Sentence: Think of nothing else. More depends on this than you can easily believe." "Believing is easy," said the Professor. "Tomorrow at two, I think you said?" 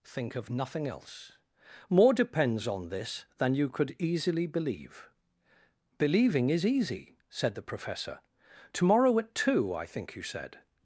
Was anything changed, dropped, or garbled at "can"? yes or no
yes